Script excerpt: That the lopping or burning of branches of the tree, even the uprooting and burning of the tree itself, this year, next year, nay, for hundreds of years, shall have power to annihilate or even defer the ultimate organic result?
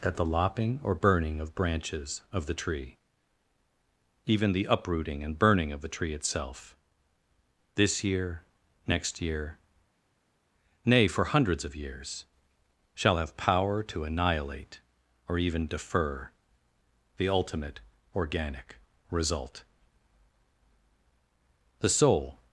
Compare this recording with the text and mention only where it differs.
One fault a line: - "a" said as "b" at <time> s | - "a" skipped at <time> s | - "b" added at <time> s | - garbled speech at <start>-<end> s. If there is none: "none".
- "The soul" added at 21.8 s